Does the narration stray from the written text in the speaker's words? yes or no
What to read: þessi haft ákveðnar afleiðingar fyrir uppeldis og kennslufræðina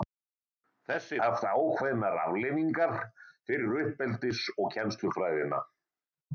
no